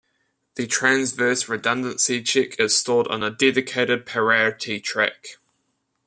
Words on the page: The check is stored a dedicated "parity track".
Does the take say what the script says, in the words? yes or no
no